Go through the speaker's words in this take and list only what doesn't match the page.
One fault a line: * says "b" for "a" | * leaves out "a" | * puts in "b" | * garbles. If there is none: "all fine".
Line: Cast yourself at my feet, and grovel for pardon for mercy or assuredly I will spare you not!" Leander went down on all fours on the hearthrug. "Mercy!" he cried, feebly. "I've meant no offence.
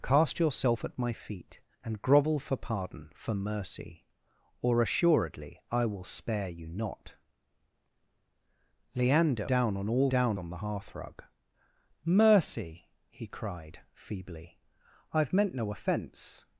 * leaves out "went"
* says "down" for "fours"